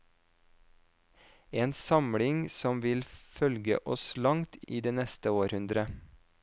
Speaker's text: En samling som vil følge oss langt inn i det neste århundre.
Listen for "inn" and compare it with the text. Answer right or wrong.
wrong